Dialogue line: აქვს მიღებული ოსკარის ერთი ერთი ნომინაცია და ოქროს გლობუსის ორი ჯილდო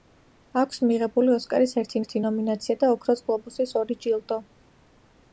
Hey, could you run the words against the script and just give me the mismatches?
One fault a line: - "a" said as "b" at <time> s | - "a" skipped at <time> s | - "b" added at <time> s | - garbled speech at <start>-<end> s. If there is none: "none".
none